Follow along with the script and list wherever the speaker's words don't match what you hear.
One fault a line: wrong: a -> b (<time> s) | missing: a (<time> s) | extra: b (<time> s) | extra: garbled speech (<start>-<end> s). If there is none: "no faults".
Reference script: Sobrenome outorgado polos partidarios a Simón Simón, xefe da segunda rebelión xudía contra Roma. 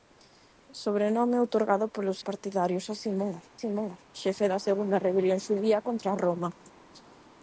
no faults